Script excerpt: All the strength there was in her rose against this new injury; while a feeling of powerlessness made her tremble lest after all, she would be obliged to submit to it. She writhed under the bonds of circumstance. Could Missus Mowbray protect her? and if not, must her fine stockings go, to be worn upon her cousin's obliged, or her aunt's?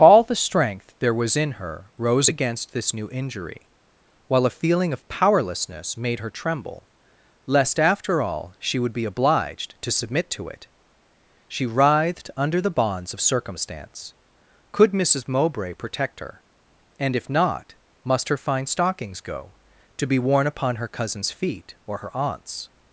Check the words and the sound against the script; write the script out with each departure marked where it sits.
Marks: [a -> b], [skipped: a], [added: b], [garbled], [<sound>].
All the strength there was in her rose against this new injury; while a feeling of powerlessness made her tremble lest after all, she would be obliged to submit to it. She writhed under the bonds of circumstance. Could Missus Mowbray protect her? and if not, must her fine stockings go, to be worn upon her cousin's [obliged, -> feet] or her aunt's?